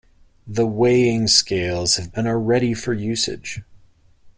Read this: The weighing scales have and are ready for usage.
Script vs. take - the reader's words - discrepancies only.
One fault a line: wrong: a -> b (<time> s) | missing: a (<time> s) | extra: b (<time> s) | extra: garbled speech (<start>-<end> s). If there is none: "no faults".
no faults